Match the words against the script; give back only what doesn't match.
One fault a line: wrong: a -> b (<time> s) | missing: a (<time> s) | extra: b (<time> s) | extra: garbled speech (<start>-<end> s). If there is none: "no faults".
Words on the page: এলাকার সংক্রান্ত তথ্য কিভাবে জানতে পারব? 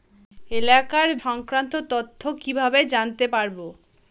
no faults